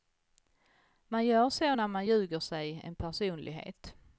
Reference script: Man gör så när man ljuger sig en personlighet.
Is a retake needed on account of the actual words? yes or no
no